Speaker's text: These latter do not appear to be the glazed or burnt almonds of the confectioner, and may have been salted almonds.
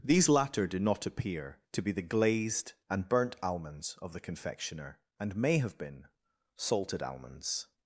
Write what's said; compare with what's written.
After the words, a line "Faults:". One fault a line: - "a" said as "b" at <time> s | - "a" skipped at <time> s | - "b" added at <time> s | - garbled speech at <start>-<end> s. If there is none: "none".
These latter do not appear to be the glazed and burnt almonds of the confectioner, and may have been salted almonds.
Faults:
- "or" said as "and" at 2.9 s